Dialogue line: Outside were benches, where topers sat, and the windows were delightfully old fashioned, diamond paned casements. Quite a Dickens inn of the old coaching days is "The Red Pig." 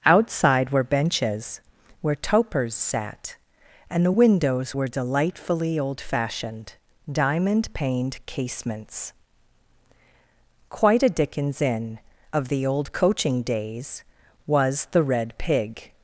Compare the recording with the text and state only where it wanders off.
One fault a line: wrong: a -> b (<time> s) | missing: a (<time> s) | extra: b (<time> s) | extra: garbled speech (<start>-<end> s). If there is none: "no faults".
wrong: is -> was (14.4 s)